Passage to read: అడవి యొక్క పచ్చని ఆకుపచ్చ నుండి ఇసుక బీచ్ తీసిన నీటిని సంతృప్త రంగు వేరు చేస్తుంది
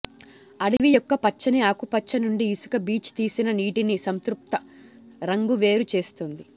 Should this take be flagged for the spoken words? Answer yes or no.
no